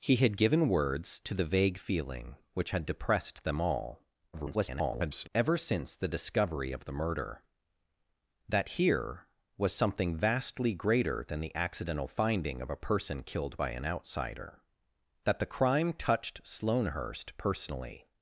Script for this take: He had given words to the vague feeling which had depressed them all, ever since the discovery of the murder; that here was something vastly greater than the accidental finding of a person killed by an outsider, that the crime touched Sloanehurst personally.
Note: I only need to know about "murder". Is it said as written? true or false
true